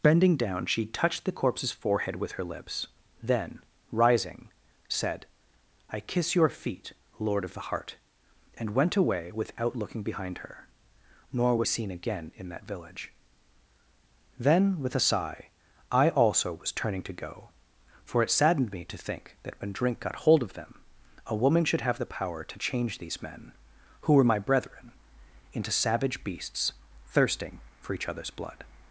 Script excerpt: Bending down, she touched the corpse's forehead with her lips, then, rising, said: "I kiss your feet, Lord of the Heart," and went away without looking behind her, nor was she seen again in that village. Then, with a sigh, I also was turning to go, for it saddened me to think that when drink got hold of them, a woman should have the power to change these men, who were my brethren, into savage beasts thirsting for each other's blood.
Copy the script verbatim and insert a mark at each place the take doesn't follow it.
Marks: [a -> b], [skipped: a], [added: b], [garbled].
Bending down, she touched the corpse's forehead with her lips, then, rising, said: "I kiss your feet, Lord of the Heart," and went away without looking behind her, nor was [skipped: she] seen again in that village. Then, with a sigh, I also was turning to go, for it saddened me to think that when drink got hold of them, a woman should have the power to change these men, who were my brethren, into savage beasts thirsting for each other's blood.